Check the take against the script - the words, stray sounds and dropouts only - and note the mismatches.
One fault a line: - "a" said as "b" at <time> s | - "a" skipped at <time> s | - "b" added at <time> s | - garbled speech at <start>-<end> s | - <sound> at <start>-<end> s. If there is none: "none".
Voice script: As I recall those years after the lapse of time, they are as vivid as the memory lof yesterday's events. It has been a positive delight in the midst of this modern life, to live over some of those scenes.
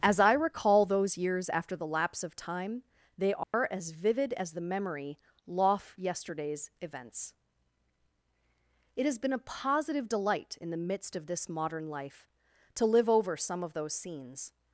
- dropout at 3.4-3.5 s